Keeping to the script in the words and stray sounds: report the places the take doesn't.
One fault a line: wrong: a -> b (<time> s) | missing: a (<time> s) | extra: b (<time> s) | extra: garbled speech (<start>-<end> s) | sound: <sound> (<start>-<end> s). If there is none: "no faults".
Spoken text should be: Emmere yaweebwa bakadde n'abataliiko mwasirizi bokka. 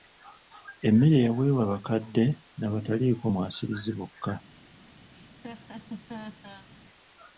sound: laugh (5.1-6.7 s)